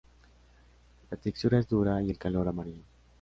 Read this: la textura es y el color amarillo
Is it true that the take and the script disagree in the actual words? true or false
true